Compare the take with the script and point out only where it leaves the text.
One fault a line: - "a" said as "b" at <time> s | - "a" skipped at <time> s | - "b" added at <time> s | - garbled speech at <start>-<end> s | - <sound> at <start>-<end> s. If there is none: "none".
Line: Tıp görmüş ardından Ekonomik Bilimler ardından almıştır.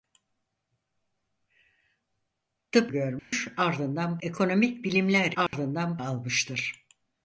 - dropout at 3.2-3.3 s
- dropout at 5.5-5.5 s